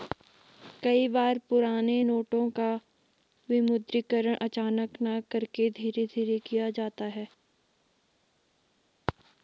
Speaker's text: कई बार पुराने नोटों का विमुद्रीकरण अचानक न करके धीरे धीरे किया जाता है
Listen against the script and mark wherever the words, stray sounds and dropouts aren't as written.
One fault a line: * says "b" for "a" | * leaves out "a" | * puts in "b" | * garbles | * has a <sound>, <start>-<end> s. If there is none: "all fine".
all fine